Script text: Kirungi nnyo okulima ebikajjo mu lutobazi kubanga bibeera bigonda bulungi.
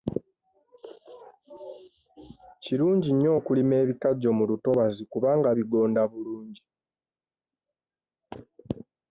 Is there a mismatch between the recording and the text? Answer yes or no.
yes